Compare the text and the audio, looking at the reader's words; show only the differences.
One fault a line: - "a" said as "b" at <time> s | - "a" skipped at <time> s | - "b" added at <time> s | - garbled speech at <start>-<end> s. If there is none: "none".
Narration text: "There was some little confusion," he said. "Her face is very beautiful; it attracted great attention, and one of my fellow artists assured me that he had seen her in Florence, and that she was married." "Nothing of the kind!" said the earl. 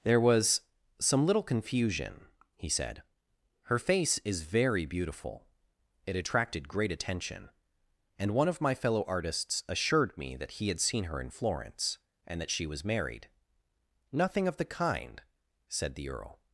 none